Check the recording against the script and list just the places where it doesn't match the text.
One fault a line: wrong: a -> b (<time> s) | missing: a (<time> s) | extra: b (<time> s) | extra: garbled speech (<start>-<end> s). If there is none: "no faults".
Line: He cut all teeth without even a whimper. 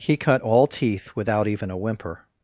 no faults